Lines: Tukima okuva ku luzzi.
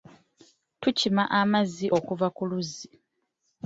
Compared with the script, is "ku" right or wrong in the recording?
right